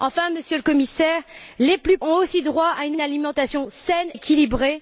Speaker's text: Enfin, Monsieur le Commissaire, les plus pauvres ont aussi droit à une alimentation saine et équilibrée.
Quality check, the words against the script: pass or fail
fail